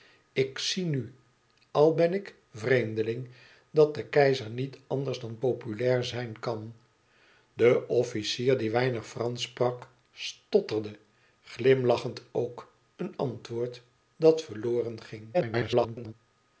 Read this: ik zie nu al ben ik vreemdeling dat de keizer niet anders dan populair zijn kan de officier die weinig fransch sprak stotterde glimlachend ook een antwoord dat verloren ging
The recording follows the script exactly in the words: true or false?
false